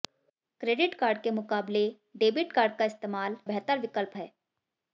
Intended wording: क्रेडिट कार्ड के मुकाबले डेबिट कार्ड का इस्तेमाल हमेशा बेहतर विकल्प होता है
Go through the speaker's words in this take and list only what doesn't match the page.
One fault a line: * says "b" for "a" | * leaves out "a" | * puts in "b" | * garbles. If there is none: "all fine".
* leaves out "हमेशा"
* leaves out "होता"